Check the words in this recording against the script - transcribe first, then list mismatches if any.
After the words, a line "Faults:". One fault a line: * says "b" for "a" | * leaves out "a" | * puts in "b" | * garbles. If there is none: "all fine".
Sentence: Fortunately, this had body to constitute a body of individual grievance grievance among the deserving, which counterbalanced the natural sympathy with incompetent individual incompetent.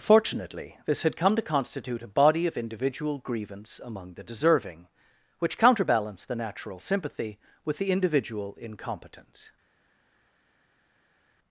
Fortunately, this had come to constitute a body of individual grievance among the deserving, which counterbalanced the natural sympathy with the individual incompetent.
Faults:
* says "come" for "body"
* leaves out "grievance"
* says "the" for "incompetent"